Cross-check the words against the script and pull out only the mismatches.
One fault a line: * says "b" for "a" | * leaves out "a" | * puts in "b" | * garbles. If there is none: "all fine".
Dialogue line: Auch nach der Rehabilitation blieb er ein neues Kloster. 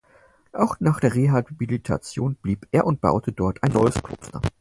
* puts in "und baute dort"